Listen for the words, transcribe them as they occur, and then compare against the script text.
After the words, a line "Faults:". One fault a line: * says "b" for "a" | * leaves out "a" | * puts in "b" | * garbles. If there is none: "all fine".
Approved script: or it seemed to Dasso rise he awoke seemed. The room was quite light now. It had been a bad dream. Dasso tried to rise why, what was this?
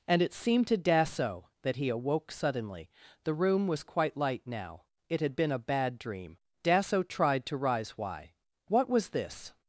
and it seemed to Dasso that he awoke suddenly. The room was quite light now. It had been a bad dream. Dasso tried to rise why, what was this?
Faults:
* says "and" for "or"
* says "that" for "rise"
* says "suddenly" for "seemed"